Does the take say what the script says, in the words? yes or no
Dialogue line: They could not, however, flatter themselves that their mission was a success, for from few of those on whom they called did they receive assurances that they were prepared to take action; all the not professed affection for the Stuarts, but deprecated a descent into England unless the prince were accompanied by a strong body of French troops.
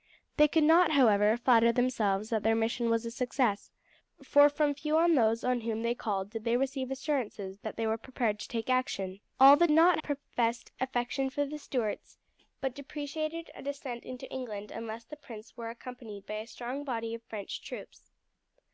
yes